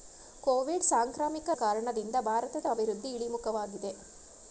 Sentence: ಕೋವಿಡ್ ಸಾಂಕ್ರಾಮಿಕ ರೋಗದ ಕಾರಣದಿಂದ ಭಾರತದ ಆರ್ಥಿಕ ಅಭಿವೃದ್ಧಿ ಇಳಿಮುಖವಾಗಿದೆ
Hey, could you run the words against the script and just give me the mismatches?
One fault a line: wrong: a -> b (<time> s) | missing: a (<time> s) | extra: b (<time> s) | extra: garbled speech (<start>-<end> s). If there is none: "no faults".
missing: ರೋಗದ (1.5 s)
missing: ಆರ್ಥಿಕ (2.7 s)